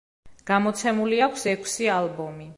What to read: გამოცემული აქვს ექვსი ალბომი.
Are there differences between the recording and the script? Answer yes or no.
no